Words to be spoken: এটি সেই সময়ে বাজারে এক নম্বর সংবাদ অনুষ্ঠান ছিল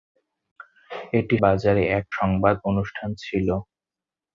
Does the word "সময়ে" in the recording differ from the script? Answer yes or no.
yes